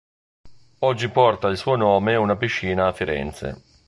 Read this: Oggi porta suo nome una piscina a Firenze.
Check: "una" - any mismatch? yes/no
no